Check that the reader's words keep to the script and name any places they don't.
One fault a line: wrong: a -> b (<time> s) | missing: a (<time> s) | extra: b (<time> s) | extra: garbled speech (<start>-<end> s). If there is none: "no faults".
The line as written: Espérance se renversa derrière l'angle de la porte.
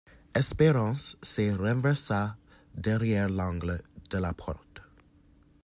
no faults